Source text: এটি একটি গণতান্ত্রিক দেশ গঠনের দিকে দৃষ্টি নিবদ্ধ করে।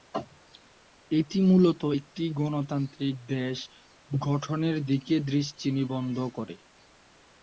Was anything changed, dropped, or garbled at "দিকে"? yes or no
no